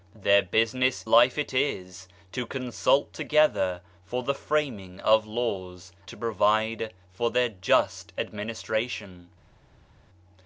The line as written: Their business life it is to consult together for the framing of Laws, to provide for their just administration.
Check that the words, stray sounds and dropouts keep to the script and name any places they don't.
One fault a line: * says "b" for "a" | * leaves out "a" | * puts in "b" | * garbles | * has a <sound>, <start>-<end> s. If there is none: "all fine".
all fine